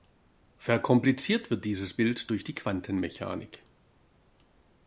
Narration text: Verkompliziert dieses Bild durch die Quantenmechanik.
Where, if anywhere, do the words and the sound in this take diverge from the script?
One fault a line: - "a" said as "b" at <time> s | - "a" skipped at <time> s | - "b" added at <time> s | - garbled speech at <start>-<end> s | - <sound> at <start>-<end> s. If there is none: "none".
- "wird" added at 1.5 s